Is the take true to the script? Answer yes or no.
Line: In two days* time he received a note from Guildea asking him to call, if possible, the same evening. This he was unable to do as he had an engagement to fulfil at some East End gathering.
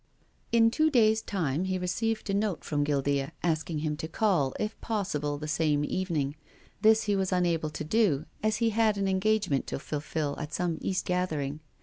no